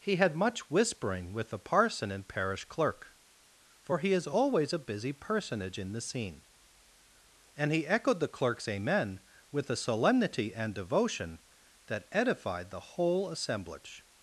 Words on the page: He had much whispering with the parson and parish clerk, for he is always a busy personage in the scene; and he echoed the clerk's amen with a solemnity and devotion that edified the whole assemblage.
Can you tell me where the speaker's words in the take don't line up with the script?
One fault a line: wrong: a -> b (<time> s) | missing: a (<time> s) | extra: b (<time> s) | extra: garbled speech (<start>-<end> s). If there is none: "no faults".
no faults